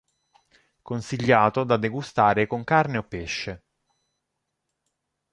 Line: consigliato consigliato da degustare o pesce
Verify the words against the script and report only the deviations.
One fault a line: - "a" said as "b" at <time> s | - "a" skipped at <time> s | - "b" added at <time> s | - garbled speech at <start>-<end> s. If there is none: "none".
- "consigliato" skipped at 1.6 s
- "con carne" added at 2.5 s